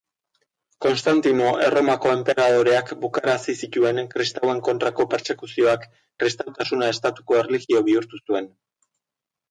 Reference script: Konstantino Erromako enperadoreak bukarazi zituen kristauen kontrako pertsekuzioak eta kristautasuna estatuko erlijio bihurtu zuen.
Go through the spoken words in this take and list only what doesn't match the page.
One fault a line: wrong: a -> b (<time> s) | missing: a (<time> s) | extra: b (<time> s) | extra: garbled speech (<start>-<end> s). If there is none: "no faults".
missing: eta (5.9 s)